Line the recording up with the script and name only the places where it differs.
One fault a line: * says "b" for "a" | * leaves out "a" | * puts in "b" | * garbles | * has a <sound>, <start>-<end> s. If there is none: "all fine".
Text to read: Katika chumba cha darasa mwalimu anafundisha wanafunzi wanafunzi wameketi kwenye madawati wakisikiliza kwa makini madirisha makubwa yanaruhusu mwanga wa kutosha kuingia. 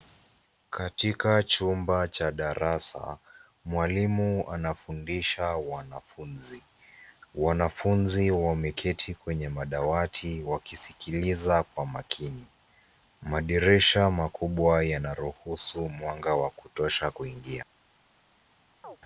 * has a chirp, 18.8-19.0 s